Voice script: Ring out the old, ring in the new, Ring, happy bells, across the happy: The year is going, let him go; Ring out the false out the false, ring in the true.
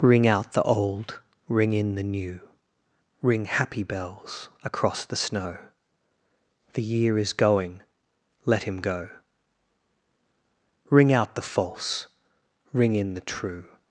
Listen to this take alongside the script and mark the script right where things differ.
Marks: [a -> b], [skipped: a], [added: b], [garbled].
Ring out the old, ring in the new, Ring, happy bells, across the [happy: -> snow] The year is going, let him go; Ring out the false [skipped: out the false,] ring in the true.